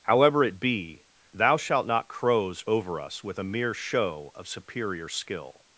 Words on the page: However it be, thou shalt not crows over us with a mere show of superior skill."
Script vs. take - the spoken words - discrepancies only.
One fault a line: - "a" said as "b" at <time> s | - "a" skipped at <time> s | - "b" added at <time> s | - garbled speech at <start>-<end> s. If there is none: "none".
none